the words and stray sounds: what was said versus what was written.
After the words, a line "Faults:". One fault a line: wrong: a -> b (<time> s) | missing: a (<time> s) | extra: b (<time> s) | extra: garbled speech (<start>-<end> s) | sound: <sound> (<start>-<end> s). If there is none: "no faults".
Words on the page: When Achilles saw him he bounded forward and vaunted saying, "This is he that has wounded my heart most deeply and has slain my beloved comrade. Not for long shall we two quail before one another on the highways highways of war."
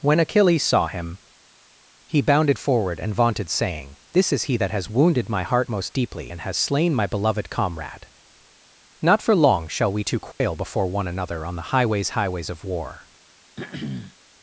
When Achilles saw him he bounded forward and vaunted saying, "This is he that has wounded my heart most deeply and has slain my beloved comrade. Not for long shall we two quail before one another on the highways highways of war."
Faults:
sound: dropout (10.3-10.4 s)
sound: throat clearing (13.6-14.2 s)